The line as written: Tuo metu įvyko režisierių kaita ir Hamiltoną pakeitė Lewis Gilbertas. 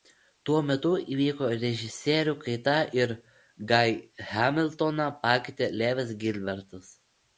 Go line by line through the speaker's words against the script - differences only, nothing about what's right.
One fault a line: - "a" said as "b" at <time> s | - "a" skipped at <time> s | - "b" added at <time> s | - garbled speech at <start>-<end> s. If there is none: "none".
- "Guy" added at 3.7 s